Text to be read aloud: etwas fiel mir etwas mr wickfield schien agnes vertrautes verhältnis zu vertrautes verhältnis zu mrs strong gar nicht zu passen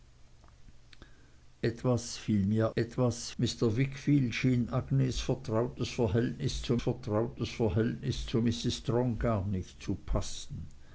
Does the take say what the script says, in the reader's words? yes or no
yes